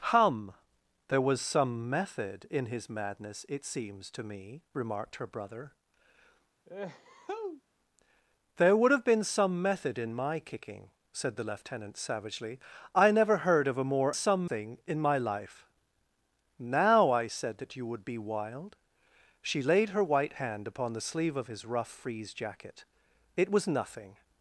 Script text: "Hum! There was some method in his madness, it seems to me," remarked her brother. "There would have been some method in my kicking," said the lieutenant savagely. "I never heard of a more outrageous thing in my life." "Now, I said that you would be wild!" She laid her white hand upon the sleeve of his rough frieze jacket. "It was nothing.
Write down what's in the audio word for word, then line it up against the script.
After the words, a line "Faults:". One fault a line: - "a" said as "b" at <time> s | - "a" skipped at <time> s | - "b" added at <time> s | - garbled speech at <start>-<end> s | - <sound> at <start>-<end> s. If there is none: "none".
"Hum! There was some method in his madness, it seems to me," remarked her brother. "There would have been some method in my kicking," said the lieutenant savagely. "I never heard of a more some thing in my life." "Now, I said that you would be wild!" She laid her white hand upon the sleeve of his rough frieze jacket. "It was nothing.
Faults:
- sneeze at 6.7-7.6 s
- "outrageous" said as "some" at 14.1 s